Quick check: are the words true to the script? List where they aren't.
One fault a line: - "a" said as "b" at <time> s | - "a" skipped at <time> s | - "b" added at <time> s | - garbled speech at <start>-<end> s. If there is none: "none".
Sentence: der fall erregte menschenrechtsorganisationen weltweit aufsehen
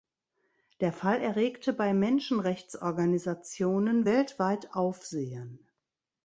- "bei" added at 1.7 s